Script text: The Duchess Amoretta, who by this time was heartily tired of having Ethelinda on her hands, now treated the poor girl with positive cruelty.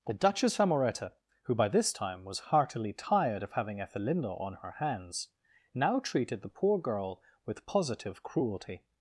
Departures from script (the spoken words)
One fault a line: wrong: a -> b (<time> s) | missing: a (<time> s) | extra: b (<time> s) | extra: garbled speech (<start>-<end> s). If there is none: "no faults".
no faults